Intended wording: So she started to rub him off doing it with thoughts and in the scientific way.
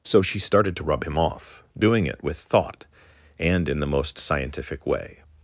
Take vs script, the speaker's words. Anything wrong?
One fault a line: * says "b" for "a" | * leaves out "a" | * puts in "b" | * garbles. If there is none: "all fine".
* says "thought" for "thoughts"
* puts in "most"